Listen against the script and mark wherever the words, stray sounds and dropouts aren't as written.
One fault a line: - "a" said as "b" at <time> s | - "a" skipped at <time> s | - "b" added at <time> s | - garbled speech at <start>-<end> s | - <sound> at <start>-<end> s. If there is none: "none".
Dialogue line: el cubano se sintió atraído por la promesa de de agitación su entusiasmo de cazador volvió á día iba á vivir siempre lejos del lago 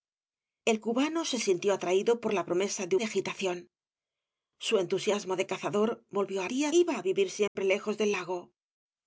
- dropout at 7.5-7.6 s